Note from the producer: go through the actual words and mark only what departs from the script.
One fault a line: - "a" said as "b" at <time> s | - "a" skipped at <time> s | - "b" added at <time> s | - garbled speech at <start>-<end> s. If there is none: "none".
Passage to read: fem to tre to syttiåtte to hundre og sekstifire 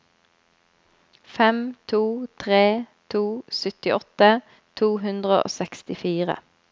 none